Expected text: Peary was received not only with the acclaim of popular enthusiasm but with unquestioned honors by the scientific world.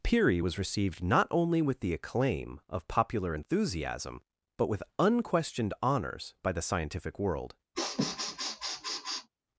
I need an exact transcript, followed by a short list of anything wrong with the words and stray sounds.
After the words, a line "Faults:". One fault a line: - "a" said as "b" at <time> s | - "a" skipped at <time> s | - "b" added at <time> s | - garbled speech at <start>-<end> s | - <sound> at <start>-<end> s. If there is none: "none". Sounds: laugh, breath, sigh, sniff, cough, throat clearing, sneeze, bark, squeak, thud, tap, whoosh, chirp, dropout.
Peary was received not only with the acclaim of popular enthusiasm but with unquestioned honors by the scientific world.
Faults:
- sniff at 7.7-9.3 s